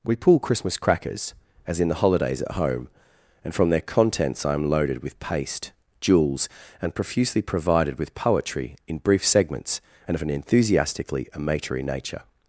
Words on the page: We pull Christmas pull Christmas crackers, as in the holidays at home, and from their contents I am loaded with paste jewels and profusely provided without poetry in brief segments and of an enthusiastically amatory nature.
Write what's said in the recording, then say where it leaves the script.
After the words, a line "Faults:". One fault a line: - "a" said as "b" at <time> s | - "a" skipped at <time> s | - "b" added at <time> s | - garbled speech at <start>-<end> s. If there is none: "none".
We pull Christmas crackers, as in the holidays at home, and from their contents I am loaded with paste jewels and profusely provided with poetry in brief segments and of an enthusiastically amatory nature.
Faults:
- "pull Christmas" skipped at 0.8 s
- "without" said as "with" at 8.0 s